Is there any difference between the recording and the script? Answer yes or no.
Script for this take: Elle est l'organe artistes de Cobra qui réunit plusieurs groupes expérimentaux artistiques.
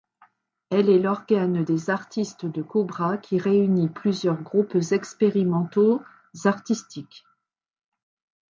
yes